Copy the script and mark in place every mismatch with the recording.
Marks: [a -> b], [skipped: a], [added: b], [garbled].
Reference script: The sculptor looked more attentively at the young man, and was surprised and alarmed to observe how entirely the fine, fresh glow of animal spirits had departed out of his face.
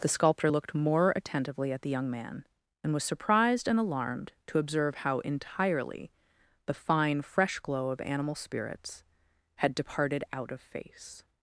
The sculptor looked more attentively at the young man, and was surprised and alarmed to observe how entirely the fine, fresh glow of animal spirits had departed out of [skipped: his] face.